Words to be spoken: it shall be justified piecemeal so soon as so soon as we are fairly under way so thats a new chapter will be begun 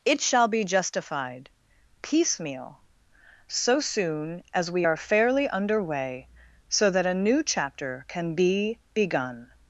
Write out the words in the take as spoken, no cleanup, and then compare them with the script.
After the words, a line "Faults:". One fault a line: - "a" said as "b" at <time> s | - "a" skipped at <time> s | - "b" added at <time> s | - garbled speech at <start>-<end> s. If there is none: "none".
it shall be justified piecemeal so soon as we are fairly under way so that a new chapter can be begun
Faults:
- "so soon as" skipped at 4.7 s
- "thats" said as "that" at 6.9 s
- "will" said as "can" at 8.1 s